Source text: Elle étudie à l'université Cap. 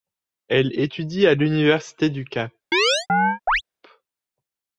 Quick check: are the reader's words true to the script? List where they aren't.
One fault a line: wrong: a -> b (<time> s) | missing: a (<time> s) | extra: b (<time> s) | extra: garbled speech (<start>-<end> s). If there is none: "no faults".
extra: du (2.1 s)